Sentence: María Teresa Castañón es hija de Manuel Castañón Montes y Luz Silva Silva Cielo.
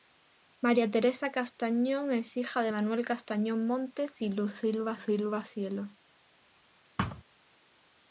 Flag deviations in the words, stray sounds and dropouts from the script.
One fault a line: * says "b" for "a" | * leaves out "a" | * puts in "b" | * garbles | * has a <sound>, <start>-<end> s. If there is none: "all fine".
* has a thud, 7.0-7.2 s